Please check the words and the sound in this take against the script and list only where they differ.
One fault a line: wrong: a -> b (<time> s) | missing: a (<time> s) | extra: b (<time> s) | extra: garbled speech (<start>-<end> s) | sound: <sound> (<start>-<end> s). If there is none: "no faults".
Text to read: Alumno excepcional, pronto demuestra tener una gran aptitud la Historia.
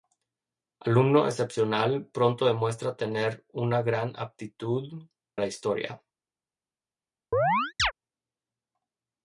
sound: chirp (7.3-7.9 s)